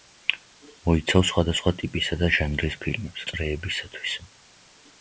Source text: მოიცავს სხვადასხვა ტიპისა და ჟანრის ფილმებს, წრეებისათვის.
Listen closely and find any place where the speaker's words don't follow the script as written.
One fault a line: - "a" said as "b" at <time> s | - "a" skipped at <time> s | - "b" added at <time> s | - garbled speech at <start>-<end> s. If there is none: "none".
none